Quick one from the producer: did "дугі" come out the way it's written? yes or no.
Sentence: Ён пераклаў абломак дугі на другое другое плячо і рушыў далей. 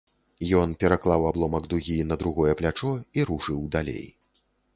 yes